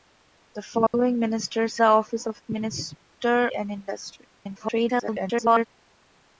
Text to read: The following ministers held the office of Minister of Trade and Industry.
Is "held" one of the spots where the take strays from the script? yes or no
yes